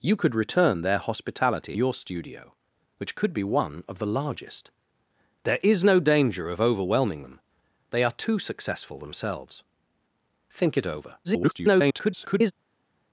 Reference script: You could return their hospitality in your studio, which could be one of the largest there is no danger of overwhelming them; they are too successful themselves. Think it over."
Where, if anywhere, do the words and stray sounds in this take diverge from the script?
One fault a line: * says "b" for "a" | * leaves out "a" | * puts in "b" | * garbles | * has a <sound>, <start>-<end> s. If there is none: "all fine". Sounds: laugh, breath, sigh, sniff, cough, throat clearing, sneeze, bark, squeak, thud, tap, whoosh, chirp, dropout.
* leaves out "in"
* garbles